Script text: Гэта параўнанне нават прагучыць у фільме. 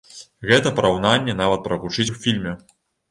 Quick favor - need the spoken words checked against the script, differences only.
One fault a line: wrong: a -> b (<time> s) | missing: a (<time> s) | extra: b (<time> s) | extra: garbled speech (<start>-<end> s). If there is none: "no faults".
no faults